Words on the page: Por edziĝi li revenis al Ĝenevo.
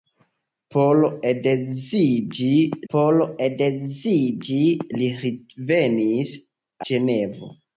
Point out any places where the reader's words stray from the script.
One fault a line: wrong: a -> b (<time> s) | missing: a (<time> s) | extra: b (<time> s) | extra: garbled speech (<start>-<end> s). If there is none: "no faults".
extra: por edziĝi (2.9 s)
missing: al (6.4 s)